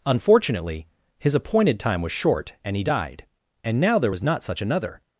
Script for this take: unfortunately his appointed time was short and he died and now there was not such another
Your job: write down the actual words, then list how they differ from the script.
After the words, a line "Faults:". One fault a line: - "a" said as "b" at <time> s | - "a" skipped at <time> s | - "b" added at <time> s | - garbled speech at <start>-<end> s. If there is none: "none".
unfortunately his appointed time was short and he died and now there was not such another
Faults:
none